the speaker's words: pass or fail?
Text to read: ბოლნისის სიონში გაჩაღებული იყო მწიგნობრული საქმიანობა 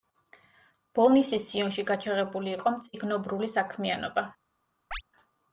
pass